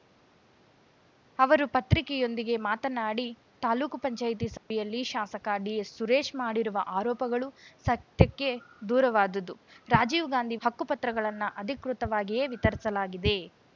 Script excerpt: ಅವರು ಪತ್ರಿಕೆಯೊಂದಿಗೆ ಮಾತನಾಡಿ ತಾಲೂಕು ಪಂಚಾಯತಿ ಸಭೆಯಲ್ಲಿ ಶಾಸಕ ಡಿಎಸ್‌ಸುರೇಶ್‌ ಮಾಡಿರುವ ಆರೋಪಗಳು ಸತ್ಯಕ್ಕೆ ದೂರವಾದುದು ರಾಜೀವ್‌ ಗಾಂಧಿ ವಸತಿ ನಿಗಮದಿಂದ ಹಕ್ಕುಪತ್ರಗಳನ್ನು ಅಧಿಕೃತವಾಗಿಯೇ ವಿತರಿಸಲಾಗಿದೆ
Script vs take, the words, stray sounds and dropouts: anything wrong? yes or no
yes